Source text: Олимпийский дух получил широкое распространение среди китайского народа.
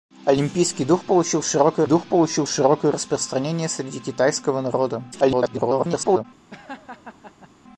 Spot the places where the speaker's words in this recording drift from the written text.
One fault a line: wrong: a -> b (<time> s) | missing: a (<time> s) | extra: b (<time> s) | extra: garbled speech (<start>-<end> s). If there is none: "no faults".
extra: дух получил широкое (1.8 s)
extra: garbled speech (5.1-6.2 s)